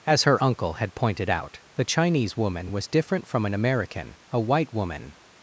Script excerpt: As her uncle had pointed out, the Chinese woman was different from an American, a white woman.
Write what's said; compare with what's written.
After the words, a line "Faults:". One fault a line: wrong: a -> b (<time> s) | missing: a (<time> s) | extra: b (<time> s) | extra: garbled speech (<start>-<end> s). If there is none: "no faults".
As her uncle had pointed out, the Chinese woman was different from an American, a white woman.
Faults:
no faults